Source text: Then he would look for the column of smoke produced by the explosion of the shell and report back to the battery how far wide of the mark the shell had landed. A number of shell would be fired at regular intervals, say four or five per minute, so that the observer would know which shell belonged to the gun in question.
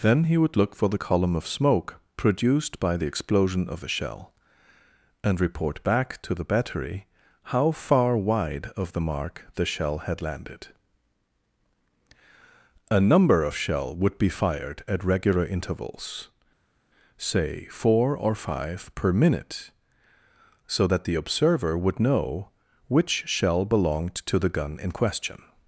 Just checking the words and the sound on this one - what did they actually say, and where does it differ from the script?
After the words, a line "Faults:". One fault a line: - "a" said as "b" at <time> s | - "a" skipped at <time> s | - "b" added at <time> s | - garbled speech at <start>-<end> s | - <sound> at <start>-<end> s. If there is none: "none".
Then he would look for the column of smoke produced by the explosion of a shell and report back to the battery how far wide of the mark the shell had landed. A number of shell would be fired at regular intervals, say four or five per minute, so that the observer would know which shell belonged to the gun in question.
Faults:
- "the" said as "a" at 3.8 s